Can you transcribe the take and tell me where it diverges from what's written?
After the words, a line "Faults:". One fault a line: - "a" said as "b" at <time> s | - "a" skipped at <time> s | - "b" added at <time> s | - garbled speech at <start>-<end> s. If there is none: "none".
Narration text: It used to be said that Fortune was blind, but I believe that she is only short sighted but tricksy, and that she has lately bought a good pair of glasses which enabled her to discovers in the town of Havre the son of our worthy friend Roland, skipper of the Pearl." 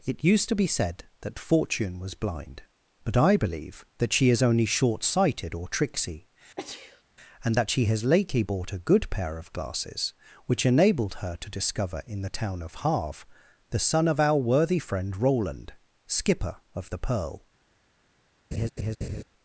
It used to be said that Fortune was blind, but I believe that she is only short sighted or tricksy, and that she has lately bought a good pair of glasses which enabled her to discover in the town of Havre the son of our worthy friend Roland, skipper of the Pearl."
Faults:
- "but" said as "or" at 5.5 s
- "discovers" said as "discover" at 11.6 s